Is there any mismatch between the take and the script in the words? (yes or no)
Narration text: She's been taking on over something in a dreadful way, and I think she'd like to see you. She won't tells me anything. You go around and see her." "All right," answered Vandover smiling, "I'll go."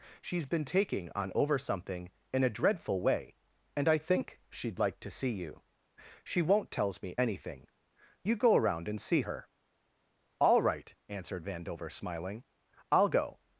no